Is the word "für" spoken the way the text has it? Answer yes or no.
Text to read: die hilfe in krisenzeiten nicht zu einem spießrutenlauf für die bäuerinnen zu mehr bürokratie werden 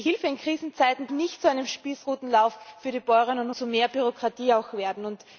yes